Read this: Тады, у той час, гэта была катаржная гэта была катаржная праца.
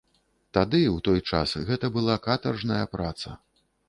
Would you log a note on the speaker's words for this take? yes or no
yes